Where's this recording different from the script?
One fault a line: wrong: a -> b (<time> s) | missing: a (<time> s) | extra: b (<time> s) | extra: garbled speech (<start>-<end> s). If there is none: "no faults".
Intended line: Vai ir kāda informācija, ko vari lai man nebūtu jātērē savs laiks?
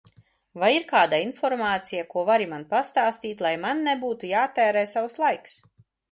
extra: man pastāstīt (2.5 s)